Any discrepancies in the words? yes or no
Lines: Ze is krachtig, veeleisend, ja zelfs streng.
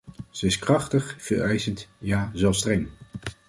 no